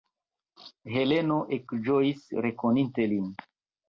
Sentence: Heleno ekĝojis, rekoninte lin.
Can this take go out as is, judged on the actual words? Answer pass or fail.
pass